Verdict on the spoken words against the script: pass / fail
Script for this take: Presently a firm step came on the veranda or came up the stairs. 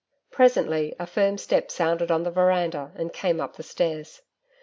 fail